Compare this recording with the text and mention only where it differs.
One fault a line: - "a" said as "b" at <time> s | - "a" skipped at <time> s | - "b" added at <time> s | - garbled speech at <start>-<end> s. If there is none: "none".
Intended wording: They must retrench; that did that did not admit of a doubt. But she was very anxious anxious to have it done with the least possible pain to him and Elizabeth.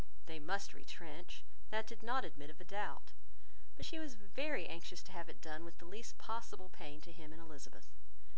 - "that did" skipped at 2.0 s
- "anxious" skipped at 5.0 s